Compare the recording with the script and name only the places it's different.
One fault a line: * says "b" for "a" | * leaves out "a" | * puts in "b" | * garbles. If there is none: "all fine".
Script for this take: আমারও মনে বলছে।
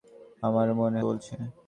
all fine